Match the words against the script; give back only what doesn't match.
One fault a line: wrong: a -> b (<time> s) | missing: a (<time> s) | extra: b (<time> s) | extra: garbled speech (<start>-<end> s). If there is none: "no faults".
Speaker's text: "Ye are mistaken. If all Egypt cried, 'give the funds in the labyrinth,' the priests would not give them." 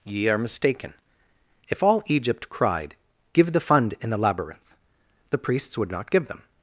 wrong: funds -> fund (3.6 s)